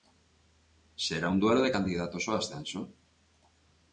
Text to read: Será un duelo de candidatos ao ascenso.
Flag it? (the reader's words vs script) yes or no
no